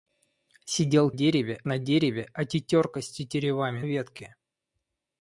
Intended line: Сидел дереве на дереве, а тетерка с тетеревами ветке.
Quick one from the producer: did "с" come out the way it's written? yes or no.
yes